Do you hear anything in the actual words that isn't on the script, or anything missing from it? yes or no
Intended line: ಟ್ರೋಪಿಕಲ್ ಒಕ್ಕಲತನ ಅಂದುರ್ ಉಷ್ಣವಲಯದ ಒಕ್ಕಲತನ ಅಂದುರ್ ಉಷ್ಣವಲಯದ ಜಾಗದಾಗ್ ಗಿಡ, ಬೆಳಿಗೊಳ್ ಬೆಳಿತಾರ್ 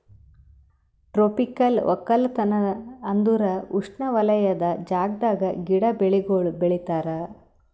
yes